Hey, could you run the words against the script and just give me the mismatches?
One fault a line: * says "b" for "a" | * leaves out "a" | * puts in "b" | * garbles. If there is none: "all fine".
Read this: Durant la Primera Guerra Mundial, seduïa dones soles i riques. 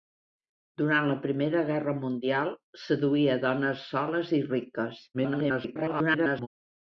* garbles